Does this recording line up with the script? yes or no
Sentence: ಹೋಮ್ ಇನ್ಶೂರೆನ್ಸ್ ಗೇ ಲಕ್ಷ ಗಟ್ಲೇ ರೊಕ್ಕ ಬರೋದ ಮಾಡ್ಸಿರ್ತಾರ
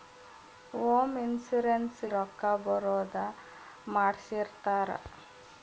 no